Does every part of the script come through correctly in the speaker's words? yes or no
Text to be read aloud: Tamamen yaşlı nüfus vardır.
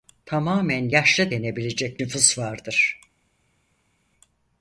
no